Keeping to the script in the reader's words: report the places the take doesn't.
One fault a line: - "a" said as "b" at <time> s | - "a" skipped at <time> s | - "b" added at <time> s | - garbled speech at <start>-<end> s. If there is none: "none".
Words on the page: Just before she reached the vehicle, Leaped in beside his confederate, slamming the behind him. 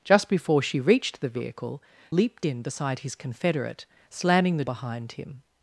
none